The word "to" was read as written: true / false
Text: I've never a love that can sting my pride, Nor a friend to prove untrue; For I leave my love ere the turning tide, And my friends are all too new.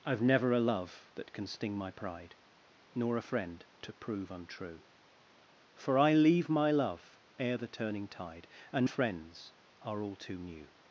true